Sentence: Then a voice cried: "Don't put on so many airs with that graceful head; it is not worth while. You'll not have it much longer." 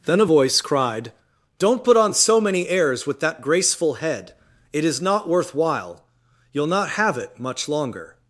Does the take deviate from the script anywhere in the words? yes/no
no